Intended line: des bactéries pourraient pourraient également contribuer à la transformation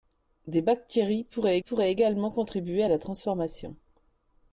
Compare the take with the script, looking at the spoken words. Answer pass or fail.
pass